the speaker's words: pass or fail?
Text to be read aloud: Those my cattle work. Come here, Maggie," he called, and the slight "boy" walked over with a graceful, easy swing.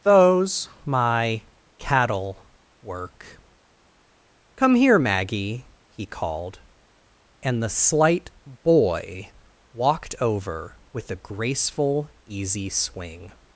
pass